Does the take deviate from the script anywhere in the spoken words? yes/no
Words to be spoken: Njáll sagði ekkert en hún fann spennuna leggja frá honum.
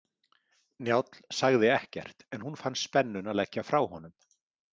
no